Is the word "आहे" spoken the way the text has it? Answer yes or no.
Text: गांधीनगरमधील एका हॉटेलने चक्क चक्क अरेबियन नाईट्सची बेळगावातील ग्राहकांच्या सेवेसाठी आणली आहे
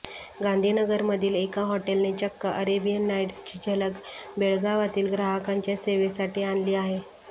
yes